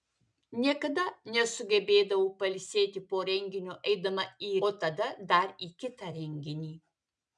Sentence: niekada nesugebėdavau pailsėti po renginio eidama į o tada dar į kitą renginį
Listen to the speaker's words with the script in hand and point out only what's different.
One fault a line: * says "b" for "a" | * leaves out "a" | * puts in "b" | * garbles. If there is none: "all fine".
all fine